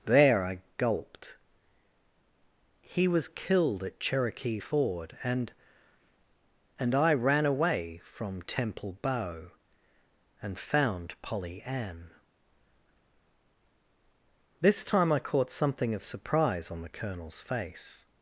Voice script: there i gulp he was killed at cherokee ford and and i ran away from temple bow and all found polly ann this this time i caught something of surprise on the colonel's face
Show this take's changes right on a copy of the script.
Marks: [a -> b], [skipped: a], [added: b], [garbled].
there i [gulp -> gulped] he was killed at cherokee ford and and i ran away from temple bow and [skipped: all] found polly ann this [skipped: this] time i caught something of surprise on the colonel's face